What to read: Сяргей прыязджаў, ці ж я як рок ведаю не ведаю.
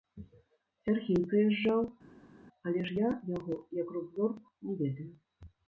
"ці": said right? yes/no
no